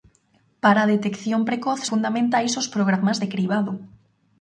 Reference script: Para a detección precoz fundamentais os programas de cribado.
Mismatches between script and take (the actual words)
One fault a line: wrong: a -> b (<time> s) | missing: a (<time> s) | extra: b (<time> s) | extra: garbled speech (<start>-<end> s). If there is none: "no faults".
no faults